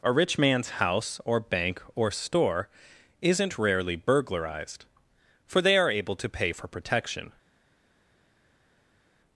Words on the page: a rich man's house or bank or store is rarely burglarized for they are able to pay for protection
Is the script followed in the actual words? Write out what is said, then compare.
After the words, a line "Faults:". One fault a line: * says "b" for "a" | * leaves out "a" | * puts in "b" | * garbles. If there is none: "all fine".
a rich man's house or bank or store isn't rarely burglarized for they are able to pay for protection
Faults:
* says "isn't" for "is"